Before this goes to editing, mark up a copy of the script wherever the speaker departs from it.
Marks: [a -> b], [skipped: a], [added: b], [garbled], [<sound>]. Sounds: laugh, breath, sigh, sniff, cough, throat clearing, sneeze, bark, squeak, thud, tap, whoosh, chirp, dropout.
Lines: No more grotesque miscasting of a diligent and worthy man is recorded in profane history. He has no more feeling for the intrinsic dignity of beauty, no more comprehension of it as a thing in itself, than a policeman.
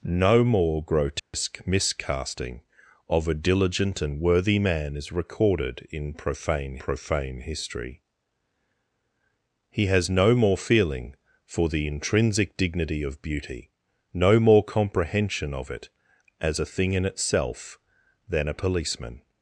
No more grotesque [dropout] miscasting of a diligent and worthy man is recorded in profane [added: profane] history. He has no more feeling for the intrinsic dignity of beauty, no more comprehension of it as a thing in itself, than a policeman.